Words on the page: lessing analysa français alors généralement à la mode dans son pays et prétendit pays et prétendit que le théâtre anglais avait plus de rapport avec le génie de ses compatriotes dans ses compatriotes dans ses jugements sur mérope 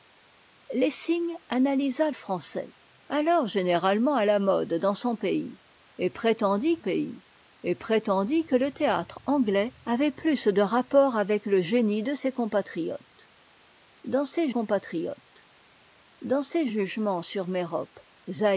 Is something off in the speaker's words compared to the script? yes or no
no